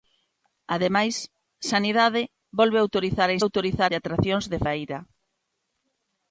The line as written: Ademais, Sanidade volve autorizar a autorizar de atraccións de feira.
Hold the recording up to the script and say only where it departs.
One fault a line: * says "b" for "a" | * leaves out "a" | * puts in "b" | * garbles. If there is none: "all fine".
all fine